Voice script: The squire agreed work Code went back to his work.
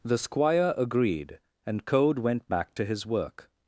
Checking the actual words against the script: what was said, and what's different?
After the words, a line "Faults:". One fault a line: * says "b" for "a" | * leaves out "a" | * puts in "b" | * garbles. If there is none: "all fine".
The squire agreed and Code went back to his work.
Faults:
* says "and" for "work"